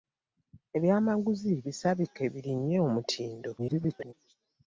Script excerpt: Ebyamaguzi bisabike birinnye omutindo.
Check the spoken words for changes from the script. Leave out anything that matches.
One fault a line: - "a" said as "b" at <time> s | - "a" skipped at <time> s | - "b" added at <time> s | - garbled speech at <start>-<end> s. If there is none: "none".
- garbled speech at 3.6-4.1 s